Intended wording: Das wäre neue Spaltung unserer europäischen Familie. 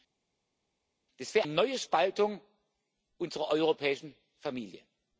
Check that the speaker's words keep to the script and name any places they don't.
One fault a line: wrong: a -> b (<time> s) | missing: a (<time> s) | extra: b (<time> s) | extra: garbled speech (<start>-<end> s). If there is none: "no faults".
no faults